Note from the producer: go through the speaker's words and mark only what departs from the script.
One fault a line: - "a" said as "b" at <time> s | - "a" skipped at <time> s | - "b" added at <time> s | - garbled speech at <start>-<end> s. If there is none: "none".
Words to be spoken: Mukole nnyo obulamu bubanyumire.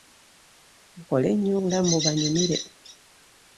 none